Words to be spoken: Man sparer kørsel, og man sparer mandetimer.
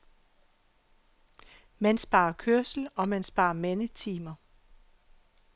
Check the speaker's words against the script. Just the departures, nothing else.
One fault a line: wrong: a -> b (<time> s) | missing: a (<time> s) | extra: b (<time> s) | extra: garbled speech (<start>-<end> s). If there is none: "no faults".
no faults